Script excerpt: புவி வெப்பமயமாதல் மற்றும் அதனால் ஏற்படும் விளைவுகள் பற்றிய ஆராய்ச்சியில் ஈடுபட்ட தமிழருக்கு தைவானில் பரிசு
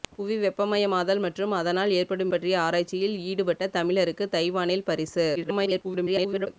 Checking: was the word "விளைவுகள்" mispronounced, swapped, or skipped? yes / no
yes